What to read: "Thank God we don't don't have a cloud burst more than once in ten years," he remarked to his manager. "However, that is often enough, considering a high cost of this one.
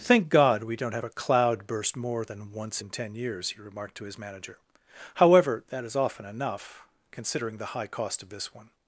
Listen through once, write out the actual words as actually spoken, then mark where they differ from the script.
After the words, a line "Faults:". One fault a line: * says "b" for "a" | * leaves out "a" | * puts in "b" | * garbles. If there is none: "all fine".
"Thank God we don't have a cloud burst more than once in ten years," he remarked to his manager. "However, that is often enough, considering the high cost of this one.
Faults:
* leaves out "don't"
* says "the" for "a"